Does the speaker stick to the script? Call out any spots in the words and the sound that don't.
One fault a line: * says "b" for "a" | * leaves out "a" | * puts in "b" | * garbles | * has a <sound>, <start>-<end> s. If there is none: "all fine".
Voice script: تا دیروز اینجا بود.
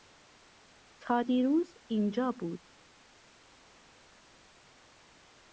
all fine